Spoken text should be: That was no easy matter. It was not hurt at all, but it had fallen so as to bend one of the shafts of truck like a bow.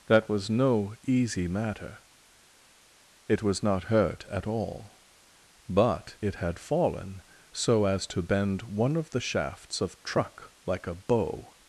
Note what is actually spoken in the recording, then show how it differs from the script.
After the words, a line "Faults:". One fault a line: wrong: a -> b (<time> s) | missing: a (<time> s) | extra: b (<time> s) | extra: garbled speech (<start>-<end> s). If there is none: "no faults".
That was no easy matter. It was not hurt at all, but it had fallen so as to bend one of the shafts of truck like a bow.
Faults:
no faults